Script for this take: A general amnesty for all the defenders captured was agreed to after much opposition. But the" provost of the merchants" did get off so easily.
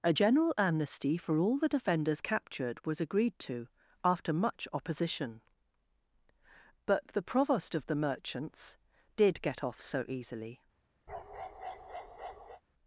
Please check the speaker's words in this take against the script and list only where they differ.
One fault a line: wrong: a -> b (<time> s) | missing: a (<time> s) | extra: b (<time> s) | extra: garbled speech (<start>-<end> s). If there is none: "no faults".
no faults